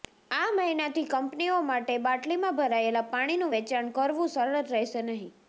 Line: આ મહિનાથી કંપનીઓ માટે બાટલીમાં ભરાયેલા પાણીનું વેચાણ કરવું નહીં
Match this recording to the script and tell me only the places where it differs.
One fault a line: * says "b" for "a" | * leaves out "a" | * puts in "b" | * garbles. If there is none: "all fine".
* puts in "સરળ રહેશે"